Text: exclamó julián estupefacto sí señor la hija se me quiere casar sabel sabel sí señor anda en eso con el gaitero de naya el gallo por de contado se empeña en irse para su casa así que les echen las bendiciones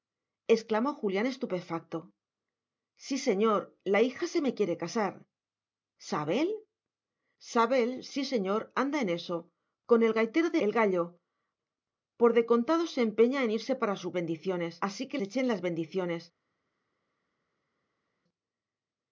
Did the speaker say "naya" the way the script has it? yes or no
no